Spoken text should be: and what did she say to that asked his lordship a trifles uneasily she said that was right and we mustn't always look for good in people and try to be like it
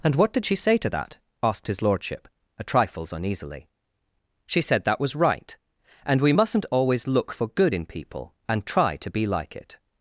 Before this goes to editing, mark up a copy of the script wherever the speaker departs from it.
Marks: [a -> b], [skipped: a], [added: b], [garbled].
and what did she say to that asked his lordship a trifles uneasily she said that was right and we mustn't always look for good in people and try to be like it